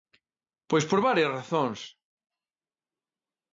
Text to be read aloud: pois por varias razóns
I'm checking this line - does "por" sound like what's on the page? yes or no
yes